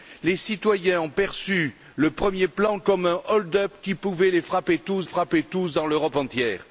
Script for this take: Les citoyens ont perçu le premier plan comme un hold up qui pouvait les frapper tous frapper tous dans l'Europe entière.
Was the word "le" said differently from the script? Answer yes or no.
no